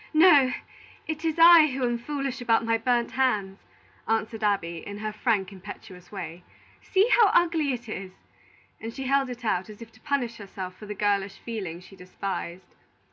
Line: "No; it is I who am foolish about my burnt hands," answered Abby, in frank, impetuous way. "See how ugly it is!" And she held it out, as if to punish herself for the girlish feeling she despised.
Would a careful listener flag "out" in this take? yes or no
no